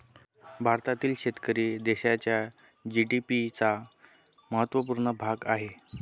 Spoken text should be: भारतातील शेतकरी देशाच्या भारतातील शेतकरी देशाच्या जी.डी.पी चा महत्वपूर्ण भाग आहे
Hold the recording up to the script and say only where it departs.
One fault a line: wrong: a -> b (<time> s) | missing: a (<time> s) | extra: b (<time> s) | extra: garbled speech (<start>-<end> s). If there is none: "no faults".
missing: भारतातील शेतकरी देशाच्या (2.4 s)